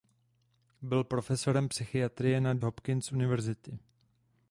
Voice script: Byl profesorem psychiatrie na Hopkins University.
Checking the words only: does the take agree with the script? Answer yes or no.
yes